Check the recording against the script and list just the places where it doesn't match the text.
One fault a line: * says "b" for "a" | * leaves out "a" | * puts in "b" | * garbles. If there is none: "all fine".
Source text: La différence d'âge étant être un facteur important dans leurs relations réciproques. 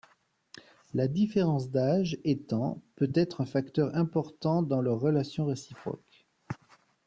* puts in "peut"